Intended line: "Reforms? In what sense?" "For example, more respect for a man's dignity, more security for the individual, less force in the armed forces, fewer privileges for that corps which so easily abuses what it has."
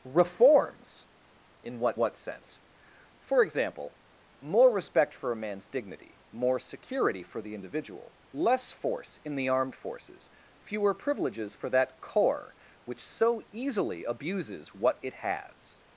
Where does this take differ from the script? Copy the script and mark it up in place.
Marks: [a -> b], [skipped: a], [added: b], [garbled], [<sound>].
"Reforms? In what [added: what] sense?" "For example, more respect for a man's dignity, more security for the individual, less force in the armed forces, fewer privileges for that corps which so easily abuses what it has."